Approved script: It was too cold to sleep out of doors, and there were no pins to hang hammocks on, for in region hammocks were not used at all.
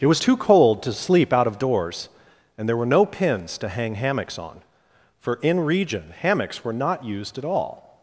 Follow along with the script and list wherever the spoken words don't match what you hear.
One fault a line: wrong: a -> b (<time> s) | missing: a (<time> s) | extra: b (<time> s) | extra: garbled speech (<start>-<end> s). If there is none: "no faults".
no faults